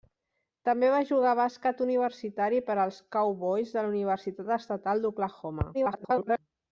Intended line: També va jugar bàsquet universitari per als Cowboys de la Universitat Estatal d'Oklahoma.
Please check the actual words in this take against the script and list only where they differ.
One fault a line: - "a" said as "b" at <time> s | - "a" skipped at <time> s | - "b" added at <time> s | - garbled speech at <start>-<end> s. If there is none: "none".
- garbled speech at 5.7-6.4 s